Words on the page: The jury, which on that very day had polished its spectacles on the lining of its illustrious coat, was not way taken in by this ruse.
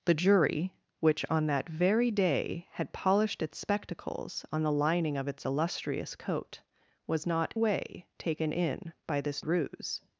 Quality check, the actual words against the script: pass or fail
pass